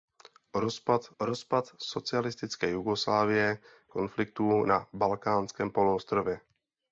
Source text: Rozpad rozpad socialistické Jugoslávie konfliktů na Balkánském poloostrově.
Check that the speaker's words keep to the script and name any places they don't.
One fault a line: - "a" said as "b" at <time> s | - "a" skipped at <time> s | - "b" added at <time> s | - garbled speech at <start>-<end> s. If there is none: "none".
none